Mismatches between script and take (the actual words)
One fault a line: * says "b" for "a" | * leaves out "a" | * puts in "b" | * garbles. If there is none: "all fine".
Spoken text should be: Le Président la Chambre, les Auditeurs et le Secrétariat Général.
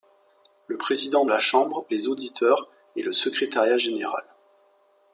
all fine